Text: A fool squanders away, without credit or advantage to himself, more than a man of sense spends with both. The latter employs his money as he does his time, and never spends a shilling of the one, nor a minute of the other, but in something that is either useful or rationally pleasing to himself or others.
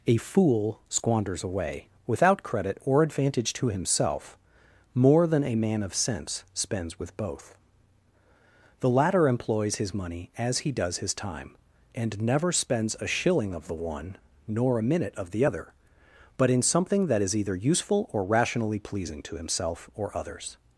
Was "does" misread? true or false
false